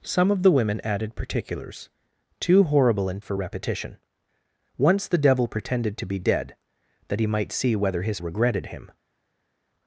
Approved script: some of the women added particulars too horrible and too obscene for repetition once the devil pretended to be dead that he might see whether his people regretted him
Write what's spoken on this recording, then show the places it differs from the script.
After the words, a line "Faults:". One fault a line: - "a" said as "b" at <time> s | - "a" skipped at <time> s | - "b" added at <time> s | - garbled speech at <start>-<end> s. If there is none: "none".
some of the women added particulars too horrible and for repetition once the devil pretended to be dead that he might see whether his regretted him
Faults:
- "too obscene" skipped at 3.2 s
- "people" skipped at 8.2 s